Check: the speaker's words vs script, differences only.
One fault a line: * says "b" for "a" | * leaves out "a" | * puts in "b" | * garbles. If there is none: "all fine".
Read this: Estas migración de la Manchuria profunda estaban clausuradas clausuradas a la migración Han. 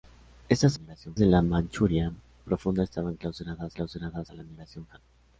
all fine